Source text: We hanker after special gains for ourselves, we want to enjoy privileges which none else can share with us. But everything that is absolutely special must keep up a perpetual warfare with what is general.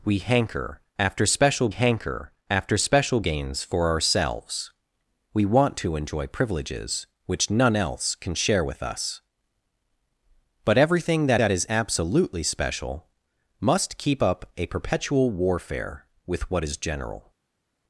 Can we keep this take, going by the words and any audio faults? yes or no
no